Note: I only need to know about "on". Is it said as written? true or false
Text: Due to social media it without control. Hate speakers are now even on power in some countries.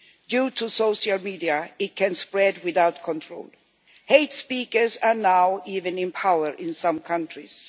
false